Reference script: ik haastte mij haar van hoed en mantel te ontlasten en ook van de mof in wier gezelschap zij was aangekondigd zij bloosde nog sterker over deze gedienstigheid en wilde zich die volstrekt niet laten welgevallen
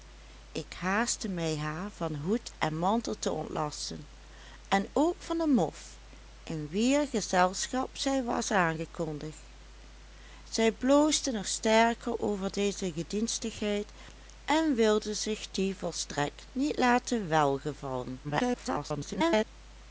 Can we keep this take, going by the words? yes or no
no